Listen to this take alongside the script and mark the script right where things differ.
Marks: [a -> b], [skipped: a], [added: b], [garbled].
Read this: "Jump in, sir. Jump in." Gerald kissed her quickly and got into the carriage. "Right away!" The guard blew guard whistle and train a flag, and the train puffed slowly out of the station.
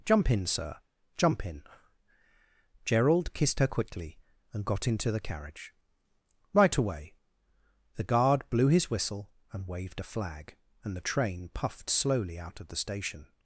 "Jump in, sir. Jump in." Gerald kissed her quickly and got into the carriage. "Right away!" The guard blew [guard -> his] whistle and [train -> waved] a flag, and the train puffed slowly out of the station.